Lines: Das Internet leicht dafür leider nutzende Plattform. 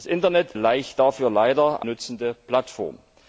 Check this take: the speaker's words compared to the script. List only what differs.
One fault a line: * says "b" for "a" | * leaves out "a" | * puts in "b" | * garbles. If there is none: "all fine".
all fine